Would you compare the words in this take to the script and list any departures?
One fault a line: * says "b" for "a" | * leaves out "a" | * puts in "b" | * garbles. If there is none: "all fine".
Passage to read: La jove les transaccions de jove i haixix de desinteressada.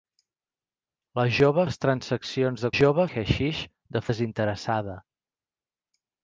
all fine